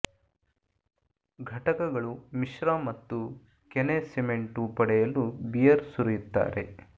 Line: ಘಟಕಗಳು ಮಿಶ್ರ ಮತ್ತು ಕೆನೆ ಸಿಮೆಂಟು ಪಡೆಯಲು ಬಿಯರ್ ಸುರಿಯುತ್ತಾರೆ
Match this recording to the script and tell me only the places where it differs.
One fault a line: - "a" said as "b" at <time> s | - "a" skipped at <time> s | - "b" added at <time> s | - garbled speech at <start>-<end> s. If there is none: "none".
none